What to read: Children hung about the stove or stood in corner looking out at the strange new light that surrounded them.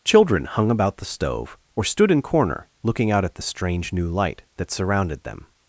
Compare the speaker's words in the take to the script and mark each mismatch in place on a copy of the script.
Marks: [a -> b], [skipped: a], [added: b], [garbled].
Children hung about the stove or stood in corner looking out at the strange new light that surrounded them.